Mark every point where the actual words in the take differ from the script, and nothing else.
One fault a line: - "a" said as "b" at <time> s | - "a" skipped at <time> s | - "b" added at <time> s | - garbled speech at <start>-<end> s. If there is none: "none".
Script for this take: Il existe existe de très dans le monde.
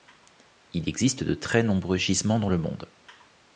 - "existe" skipped at 1.2 s
- "nombreux gisements" added at 1.6 s